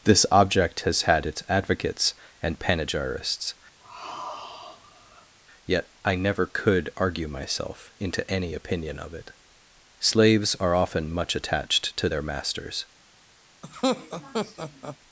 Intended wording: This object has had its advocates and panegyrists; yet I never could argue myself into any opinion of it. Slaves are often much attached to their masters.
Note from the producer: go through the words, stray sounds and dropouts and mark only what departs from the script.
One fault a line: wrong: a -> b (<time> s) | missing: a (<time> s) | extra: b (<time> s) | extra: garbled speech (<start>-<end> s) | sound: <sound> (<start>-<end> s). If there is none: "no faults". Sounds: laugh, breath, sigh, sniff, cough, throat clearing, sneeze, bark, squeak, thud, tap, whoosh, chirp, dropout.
sound: sigh (3.8-5.4 s)
sound: laugh (13.6-15.0 s)